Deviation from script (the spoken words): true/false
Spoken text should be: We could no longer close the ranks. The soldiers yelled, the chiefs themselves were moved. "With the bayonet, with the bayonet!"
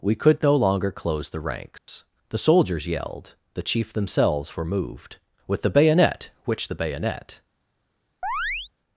true